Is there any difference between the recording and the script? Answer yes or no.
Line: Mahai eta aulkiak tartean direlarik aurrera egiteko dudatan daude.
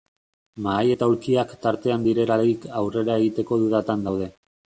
no